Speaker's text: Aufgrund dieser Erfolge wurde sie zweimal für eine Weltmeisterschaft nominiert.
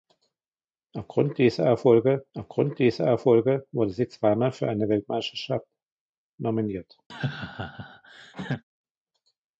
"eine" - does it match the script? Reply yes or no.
yes